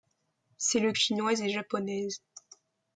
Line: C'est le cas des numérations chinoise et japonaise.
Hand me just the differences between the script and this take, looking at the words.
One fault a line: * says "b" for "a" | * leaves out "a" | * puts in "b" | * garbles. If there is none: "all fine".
* leaves out "cas des numérations"